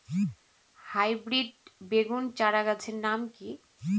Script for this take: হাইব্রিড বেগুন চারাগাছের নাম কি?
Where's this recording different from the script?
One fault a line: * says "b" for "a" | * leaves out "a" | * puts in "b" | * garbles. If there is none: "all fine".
all fine